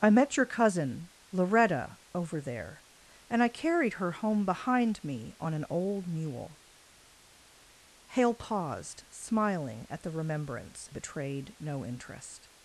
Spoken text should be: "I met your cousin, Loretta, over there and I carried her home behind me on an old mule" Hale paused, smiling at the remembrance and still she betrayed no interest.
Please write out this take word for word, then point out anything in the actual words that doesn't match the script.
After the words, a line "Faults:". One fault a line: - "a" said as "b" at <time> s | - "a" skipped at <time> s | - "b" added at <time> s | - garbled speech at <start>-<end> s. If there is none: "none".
"I met your cousin, Loretta, over there and I carried her home behind me on an old mule" Hale paused, smiling at the remembrance betrayed no interest.
Faults:
- "and still she" skipped at 10.9 s